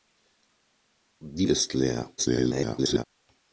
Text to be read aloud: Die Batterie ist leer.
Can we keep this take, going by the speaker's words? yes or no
no